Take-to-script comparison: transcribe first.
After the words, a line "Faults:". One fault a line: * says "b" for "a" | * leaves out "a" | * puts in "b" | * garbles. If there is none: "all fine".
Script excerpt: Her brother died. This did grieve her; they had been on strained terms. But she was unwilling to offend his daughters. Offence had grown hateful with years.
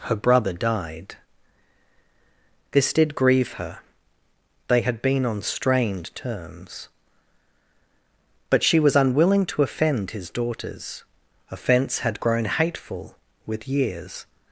Her brother died. This did grieve her; they had been on strained terms. But she was unwilling to offend his daughters. Offence had grown hateful with years.
Faults:
all fine